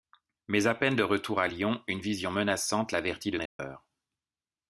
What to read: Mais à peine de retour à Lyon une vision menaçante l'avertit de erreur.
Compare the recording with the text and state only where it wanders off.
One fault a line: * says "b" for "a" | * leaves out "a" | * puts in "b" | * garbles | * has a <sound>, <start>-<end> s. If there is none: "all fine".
* has a dropout, 3.5-3.6 s